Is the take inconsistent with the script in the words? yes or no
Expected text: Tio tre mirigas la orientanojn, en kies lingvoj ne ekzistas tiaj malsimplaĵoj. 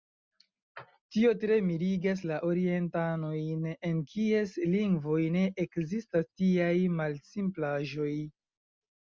no